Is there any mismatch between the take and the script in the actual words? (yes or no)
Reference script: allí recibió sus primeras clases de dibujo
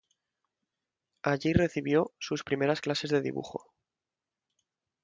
no